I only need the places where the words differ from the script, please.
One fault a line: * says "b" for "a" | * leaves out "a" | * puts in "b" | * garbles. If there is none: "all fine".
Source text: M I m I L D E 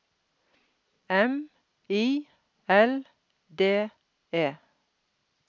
* leaves out "m I"